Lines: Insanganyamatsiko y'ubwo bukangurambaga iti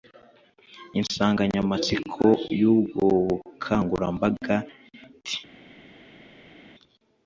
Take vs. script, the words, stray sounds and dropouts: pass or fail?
pass